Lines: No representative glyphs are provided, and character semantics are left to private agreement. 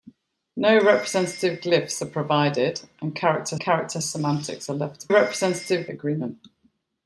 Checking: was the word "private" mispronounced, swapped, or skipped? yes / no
yes